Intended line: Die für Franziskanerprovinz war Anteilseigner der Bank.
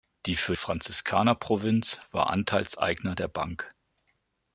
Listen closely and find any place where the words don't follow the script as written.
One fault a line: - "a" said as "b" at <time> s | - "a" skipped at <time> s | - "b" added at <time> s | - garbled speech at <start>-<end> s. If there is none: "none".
none